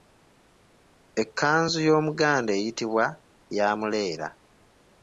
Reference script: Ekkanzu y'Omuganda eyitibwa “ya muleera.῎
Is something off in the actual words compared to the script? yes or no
no